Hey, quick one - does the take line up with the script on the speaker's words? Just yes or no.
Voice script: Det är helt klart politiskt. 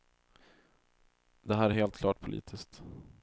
no